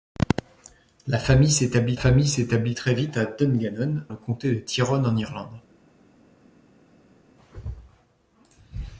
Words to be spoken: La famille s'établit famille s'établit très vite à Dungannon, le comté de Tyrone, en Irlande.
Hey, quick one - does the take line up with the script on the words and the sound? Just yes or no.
yes